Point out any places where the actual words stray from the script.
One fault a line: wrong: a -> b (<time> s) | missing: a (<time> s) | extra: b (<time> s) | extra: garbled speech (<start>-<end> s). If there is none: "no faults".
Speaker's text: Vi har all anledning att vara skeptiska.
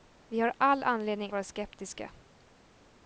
missing: att (1.3 s)